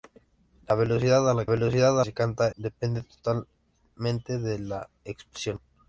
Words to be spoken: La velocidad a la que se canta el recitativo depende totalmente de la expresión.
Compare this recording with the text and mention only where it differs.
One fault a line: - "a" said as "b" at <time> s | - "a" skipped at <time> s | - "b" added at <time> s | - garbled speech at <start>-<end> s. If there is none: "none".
- "que" said as "velocidad" at 1.4 s
- "el recitativo" skipped at 2.5 s